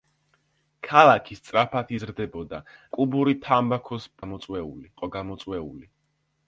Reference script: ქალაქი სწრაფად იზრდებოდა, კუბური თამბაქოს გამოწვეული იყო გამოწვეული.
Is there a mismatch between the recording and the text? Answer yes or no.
no